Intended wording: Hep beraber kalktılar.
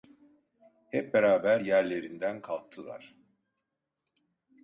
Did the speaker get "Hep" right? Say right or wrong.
right